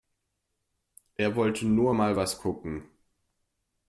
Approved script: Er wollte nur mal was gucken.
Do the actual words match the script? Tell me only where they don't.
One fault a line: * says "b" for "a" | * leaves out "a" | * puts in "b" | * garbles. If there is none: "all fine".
all fine